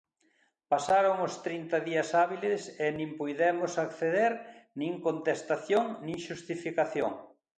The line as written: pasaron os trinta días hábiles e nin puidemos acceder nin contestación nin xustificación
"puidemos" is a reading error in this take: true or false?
false